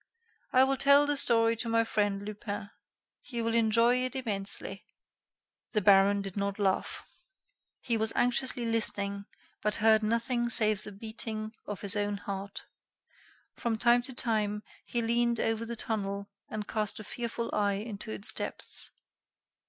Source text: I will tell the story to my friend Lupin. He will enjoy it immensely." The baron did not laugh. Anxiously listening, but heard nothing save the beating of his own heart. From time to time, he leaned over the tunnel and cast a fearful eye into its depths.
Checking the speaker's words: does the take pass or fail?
fail